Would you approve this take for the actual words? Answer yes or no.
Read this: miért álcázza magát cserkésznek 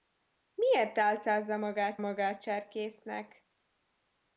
no